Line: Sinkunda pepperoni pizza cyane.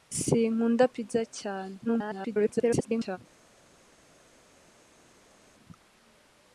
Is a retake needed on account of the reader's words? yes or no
yes